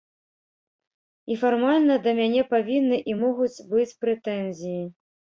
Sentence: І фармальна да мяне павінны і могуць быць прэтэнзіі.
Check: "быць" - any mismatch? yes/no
no